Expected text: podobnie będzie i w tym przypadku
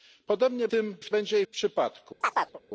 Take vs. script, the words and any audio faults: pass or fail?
fail